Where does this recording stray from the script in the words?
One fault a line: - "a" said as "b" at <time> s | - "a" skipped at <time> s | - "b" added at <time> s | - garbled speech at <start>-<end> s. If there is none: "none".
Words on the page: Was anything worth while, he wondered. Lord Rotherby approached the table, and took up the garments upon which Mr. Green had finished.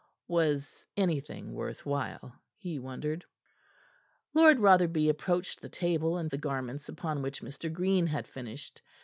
- "took up" skipped at 6.3 s